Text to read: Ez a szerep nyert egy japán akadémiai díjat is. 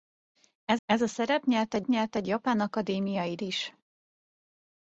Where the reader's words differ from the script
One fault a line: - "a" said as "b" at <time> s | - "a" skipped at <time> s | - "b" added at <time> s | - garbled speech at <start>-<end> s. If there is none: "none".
- "ez" added at 0.9 s
- "nyert egy" added at 1.8 s
- "díjat" skipped at 3.4 s